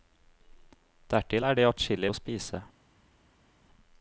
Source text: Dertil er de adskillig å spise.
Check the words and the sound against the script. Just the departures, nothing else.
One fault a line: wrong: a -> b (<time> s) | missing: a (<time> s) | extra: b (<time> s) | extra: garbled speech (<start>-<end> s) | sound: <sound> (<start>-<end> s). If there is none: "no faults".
no faults